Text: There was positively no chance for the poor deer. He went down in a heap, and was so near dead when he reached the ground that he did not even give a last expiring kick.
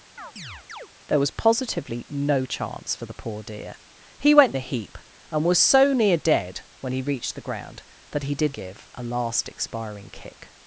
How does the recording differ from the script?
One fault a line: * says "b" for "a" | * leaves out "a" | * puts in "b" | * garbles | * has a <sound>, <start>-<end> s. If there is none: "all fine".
* has a chirp, 0.2-0.9 s
* leaves out "down in"
* leaves out "not even"